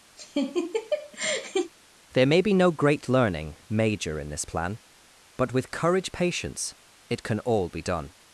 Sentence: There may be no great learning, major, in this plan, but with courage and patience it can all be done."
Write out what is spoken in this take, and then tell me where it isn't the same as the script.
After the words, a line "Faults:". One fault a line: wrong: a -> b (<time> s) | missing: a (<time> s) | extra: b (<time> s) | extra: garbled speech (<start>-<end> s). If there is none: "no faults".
There may be no great learning, major, in this plan, but with courage patience it can all be done."
Faults:
missing: and (6.1 s)